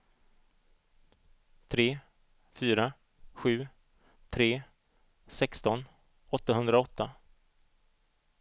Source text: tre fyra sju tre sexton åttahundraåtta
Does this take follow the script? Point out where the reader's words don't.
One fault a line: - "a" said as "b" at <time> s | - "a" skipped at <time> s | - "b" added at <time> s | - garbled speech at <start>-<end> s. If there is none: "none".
none